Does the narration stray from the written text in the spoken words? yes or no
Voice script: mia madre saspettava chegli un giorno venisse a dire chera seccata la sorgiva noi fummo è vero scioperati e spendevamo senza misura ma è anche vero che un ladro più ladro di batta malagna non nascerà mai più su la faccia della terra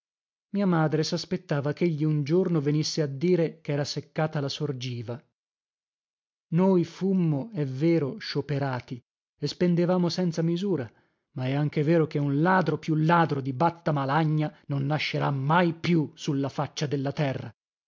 no